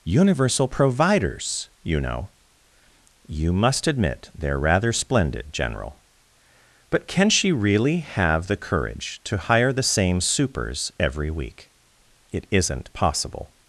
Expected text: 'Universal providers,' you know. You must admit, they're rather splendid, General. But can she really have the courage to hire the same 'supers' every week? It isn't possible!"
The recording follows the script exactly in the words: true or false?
true